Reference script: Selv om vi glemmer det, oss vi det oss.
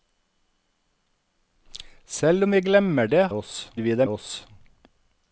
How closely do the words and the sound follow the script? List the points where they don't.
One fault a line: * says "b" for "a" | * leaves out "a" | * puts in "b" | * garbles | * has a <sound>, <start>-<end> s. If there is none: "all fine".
all fine